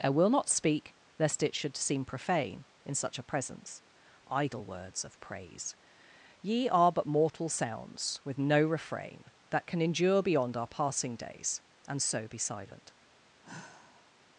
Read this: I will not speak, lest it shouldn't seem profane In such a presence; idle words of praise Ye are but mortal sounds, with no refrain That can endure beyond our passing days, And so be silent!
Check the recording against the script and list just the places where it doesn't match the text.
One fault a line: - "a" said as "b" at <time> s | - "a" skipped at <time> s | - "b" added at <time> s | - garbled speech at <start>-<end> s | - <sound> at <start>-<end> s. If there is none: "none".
- "shouldn't" said as "should" at 1.6 s
- sigh at 13.4-14.1 s